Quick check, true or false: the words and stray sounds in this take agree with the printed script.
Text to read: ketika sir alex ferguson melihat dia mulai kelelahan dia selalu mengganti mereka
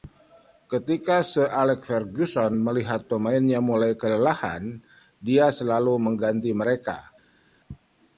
false